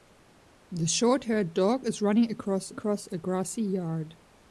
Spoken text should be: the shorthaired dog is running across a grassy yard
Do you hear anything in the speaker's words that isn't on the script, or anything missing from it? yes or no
yes